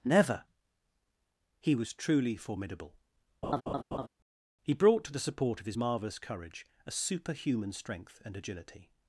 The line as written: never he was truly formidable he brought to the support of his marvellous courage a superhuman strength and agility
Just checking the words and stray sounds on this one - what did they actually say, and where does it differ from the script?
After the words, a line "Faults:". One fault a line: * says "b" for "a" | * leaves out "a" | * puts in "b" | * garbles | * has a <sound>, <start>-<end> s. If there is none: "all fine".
never he was truly formidable he brought to the support of his marvellous courage a superhuman strength and agility
Faults:
* has a laugh, 3.4-4.1 s